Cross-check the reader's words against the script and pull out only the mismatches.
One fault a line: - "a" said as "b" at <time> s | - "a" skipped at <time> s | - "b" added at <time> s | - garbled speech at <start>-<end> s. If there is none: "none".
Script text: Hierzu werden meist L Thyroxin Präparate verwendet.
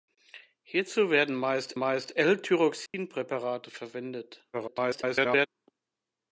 - "meist" added at 1.7 s
- garbled speech at 4.5-5.5 s